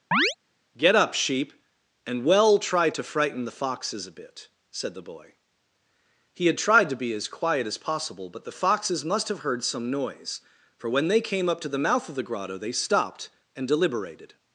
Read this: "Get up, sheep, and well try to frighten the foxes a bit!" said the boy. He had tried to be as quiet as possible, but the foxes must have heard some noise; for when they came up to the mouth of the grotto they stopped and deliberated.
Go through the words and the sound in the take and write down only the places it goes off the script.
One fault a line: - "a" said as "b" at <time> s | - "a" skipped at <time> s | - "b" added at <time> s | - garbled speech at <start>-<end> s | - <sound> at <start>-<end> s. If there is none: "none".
- chirp at 0.1-0.4 s